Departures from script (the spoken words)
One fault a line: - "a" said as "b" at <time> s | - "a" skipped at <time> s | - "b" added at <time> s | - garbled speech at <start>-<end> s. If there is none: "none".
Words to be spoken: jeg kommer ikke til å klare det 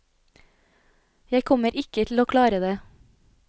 none